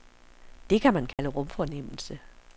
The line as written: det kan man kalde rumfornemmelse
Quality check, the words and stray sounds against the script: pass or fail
fail